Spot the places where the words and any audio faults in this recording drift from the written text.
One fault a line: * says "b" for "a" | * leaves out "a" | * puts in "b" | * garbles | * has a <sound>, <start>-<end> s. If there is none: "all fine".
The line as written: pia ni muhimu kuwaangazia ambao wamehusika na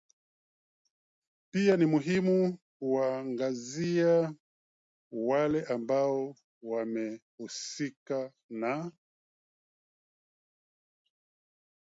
* puts in "wale"